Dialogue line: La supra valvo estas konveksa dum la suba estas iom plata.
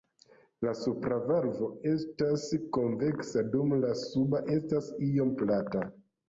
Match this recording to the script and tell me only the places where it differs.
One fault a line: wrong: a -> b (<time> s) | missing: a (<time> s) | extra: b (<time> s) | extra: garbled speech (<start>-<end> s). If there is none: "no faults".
no faults